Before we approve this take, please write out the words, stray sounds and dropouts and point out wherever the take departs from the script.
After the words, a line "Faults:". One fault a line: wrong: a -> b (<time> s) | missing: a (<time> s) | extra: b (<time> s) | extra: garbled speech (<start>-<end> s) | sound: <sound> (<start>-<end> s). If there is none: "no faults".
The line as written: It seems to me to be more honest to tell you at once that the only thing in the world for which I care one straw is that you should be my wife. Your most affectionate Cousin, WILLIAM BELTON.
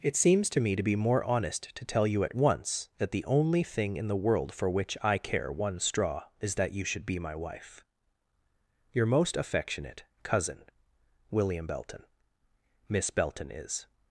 It seems to me to be more honest to tell you at once that the only thing in the world for which I care one straw is that you should be my wife. Your most affectionate Cousin, WILLIAM BELTON. "Miss Belton is
Faults:
extra: Miss Belton is (12.9 s)